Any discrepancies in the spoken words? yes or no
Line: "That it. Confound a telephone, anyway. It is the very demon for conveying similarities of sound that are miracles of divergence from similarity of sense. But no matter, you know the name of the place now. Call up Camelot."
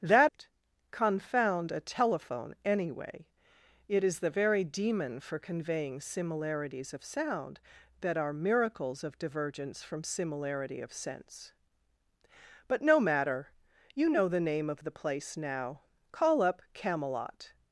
no